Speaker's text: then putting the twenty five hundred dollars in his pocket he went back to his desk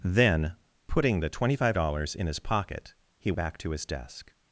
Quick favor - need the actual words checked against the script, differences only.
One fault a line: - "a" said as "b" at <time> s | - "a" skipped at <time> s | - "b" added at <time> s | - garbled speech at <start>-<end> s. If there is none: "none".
- "hundred" skipped at 1.8 s
- "went" skipped at 3.3 s